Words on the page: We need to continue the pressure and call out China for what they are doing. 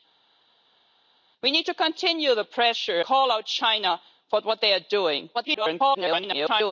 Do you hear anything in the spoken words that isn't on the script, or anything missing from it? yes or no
yes